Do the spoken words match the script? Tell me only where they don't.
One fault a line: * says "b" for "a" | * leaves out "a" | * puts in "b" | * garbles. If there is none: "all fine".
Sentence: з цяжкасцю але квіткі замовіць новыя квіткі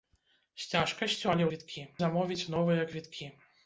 all fine